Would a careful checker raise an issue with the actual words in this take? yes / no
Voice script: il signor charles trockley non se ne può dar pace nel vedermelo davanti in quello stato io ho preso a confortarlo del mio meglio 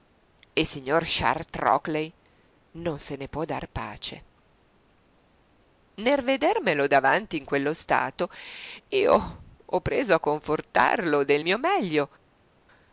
no